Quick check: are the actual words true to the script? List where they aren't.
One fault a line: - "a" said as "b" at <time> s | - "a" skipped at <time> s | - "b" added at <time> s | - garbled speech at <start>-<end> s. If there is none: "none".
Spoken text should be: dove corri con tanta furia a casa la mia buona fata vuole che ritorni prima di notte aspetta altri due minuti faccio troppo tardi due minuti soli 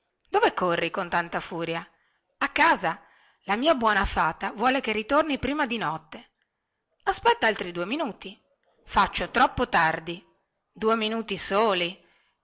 none